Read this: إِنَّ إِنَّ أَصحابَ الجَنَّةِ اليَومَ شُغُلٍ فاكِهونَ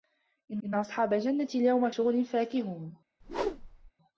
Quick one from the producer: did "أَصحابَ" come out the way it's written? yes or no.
yes